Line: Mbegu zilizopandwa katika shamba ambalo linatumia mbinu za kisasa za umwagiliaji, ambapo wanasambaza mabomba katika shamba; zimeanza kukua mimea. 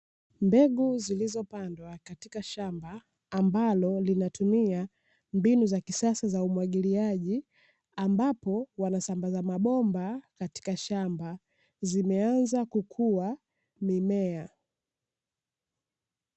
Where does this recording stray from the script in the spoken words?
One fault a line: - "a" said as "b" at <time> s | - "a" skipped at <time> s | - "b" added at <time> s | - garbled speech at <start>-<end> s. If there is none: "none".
none